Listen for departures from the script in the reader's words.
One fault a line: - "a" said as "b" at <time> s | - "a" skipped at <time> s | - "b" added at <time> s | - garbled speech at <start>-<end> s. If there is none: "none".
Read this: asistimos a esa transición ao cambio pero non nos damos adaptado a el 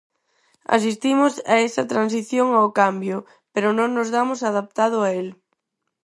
none